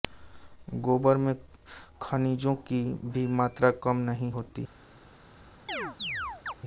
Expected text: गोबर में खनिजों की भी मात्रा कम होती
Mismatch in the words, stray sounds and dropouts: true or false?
true